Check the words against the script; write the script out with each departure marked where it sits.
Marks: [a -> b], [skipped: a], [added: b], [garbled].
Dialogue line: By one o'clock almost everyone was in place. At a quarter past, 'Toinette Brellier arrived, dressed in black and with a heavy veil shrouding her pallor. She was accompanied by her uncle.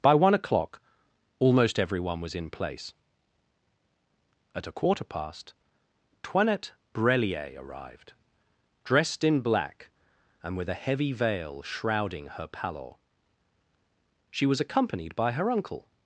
By one o'clock almost everyone was in place. At a quarter past, 'Toinette Brellier arrived, dressed in black and with a heavy veil shrouding her pallor. She was accompanied by her uncle.